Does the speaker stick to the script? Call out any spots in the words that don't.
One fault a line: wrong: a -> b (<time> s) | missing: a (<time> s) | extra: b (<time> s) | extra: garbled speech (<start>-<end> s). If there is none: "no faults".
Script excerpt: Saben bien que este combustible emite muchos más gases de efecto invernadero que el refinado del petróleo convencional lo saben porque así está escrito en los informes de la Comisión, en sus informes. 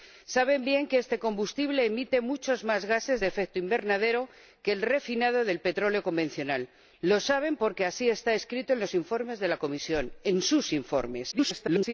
extra: garbled speech (11.3-11.9 s)